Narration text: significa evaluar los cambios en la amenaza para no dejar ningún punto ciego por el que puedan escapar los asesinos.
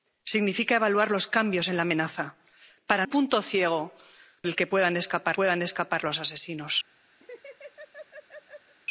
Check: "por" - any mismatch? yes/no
yes